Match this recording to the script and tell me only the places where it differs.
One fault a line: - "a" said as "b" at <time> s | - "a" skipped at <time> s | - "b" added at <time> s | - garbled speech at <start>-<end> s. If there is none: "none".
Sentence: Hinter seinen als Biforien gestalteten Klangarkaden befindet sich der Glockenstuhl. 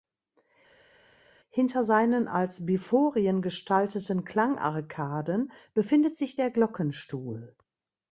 none